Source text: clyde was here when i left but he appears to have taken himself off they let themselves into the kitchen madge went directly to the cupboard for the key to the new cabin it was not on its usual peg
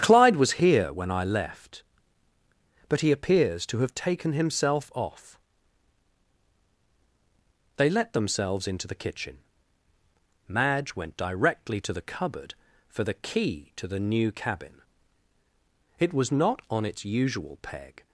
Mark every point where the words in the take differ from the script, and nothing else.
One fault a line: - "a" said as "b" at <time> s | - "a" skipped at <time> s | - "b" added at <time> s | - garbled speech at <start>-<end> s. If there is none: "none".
none